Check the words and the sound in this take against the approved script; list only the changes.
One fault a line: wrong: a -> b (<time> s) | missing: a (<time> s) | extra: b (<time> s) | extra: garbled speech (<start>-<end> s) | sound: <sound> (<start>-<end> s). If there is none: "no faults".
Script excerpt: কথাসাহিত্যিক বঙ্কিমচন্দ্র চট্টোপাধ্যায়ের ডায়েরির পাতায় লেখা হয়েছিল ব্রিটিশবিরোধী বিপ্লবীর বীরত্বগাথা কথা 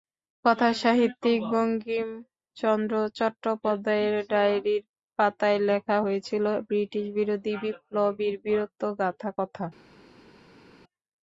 no faults